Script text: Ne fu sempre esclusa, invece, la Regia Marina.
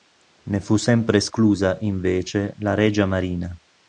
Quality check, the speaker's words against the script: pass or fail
pass